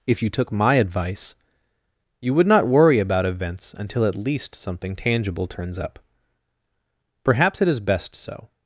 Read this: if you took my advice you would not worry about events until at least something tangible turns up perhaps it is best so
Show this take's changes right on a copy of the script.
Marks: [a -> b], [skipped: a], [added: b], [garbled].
if you took my advice you would not worry about events until at least something tangible turns up perhaps it is best so